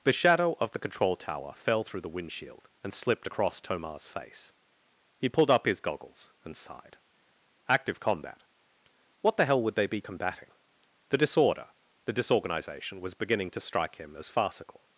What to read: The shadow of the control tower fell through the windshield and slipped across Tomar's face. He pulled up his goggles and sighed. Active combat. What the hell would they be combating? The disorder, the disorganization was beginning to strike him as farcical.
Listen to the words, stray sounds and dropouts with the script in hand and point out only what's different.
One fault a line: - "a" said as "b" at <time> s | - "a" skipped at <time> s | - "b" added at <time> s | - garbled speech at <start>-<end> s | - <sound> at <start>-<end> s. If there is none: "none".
none